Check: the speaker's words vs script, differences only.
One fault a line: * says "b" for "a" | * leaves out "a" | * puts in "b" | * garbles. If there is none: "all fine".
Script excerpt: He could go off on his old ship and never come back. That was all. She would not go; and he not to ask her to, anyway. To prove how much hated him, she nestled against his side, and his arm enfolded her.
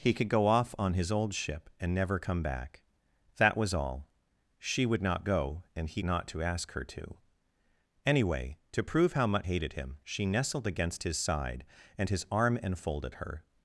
all fine